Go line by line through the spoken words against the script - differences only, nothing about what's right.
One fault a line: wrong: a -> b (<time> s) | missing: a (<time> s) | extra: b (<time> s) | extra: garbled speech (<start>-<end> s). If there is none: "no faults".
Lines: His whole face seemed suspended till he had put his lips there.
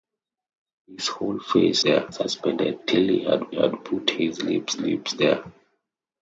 wrong: seemed -> there (1.8 s)
extra: had (3.5 s)
extra: lips (4.8 s)